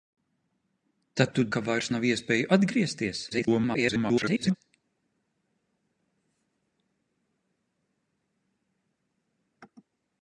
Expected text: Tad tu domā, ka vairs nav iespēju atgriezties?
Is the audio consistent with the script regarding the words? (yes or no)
no